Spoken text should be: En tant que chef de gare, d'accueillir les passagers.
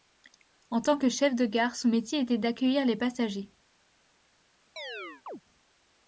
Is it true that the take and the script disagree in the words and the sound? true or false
true